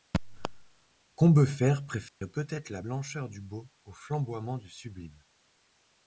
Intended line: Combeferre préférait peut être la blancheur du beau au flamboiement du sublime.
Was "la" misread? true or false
false